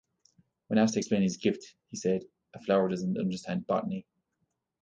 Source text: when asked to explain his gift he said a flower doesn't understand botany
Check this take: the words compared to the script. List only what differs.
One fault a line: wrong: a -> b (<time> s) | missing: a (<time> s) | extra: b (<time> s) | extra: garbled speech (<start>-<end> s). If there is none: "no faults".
no faults